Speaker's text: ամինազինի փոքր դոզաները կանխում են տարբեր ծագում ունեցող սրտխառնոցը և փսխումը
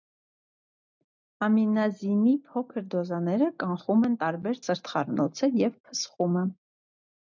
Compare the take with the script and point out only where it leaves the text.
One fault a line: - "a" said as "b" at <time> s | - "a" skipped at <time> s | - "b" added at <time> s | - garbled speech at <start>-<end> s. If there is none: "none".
- "ծագում ունեցող" skipped at 4.6 s